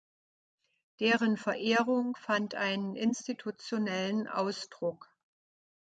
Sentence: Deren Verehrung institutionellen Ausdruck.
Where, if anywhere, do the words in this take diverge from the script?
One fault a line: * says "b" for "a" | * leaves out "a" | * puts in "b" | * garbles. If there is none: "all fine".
* puts in "fand einen"